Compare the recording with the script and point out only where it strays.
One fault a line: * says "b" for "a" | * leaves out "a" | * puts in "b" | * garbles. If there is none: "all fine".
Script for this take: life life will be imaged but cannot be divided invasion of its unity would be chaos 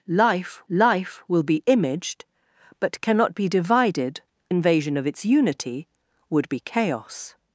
all fine